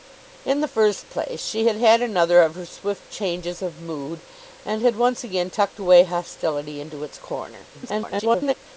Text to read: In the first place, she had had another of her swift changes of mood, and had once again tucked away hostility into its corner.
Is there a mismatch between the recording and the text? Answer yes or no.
yes